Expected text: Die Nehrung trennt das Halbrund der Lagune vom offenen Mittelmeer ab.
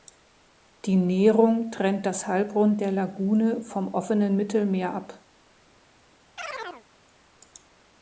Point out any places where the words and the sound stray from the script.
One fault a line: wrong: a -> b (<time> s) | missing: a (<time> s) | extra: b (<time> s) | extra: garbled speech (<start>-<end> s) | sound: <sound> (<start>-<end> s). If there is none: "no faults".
sound: chirp (6.4-6.8 s)